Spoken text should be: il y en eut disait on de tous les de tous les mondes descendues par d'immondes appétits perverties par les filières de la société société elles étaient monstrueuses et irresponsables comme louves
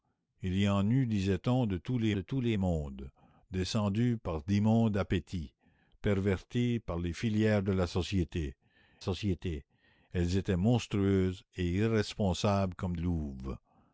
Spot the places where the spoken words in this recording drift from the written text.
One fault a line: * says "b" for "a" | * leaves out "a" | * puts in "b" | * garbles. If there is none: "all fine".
all fine